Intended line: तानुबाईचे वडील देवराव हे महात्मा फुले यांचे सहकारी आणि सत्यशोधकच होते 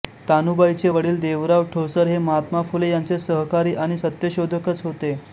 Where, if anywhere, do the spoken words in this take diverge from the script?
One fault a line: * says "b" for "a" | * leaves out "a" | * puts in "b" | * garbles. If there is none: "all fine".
* puts in "ठोसर"